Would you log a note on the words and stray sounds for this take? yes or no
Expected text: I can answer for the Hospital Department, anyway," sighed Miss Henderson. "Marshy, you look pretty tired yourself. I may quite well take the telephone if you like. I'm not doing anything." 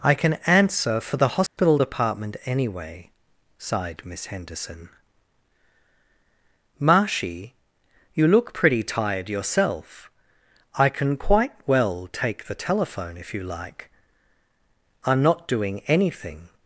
yes